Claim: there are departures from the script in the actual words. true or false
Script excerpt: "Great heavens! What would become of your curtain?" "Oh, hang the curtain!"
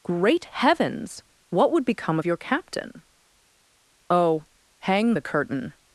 true